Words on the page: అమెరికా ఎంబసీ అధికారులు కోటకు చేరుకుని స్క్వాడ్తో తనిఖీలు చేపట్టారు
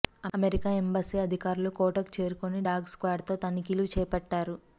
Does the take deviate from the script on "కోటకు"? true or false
false